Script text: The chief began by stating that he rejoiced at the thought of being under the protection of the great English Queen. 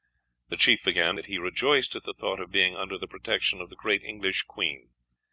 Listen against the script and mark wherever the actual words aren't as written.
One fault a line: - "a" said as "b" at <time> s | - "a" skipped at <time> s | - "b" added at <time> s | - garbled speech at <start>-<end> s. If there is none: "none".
- "by stating" skipped at 1.1 s